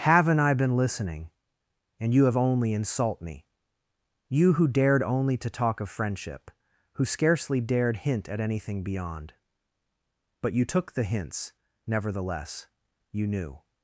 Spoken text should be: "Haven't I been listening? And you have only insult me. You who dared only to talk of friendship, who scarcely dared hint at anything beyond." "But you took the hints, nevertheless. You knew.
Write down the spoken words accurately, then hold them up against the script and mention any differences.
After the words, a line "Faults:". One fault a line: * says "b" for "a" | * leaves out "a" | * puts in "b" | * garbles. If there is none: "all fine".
"Haven't I been listening? And you have only insult me. You who dared only to talk of friendship, who scarcely dared hint at anything beyond." "But you took the hints, nevertheless. You knew.
Faults:
all fine